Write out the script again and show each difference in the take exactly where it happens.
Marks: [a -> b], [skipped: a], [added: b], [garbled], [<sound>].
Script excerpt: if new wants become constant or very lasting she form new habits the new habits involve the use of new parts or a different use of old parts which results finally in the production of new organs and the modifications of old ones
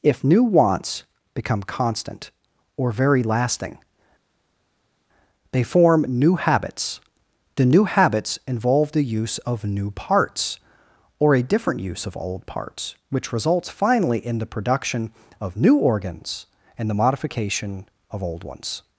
if new wants become constant or very lasting [she -> they] form new habits the new habits involve the use of new parts or a different use of old parts which results finally in the production of new organs and the [modifications -> modification] of old ones